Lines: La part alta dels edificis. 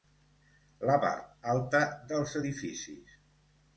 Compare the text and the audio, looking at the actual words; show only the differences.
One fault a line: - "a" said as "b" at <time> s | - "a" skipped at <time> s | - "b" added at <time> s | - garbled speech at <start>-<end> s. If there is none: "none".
none